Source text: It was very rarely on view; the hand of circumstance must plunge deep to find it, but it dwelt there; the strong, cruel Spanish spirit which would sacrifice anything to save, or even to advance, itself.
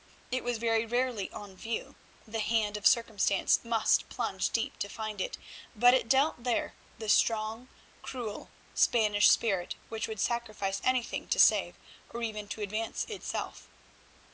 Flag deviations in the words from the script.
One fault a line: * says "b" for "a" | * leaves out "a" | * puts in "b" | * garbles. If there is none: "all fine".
all fine